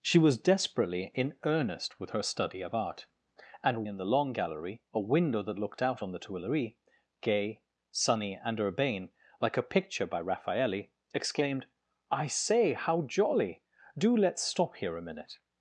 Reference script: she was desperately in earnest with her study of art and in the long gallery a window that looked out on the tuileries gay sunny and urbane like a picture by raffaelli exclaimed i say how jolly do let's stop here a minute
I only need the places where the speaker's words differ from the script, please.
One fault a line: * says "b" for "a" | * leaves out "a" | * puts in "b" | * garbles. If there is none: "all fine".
all fine